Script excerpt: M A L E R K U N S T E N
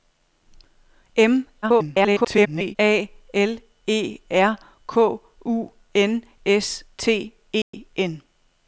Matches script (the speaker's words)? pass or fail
fail